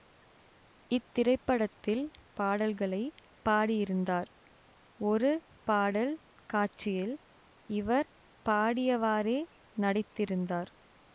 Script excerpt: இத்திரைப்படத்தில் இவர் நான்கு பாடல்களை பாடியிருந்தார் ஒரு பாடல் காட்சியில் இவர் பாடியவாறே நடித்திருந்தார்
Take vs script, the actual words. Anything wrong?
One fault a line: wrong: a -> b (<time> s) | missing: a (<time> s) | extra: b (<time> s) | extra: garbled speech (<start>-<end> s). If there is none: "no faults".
missing: இவர் நான்கு (2.0 s)